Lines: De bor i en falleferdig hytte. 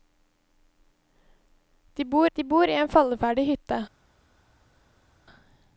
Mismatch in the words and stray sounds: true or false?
true